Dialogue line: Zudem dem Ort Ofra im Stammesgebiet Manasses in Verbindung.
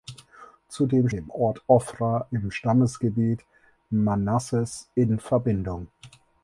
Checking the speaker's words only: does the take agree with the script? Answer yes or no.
yes